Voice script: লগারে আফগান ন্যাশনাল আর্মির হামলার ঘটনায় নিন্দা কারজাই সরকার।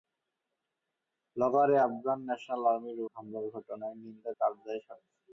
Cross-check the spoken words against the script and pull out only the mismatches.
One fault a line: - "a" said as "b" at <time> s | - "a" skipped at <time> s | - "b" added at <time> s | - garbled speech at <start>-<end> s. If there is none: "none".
none